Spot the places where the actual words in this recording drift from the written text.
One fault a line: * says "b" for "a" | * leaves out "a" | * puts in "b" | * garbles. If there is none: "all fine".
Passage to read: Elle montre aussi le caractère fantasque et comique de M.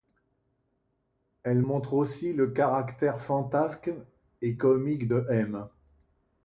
all fine